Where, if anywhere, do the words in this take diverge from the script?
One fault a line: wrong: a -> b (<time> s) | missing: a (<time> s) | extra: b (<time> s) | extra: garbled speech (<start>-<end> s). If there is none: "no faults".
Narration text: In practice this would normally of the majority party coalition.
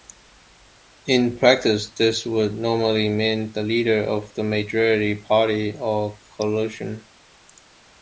extra: mean the leader (3.1 s)
extra: or (5.8 s)